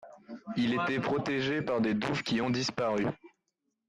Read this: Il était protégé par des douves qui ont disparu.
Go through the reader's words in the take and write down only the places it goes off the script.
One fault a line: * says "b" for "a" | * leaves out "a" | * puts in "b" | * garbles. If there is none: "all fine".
all fine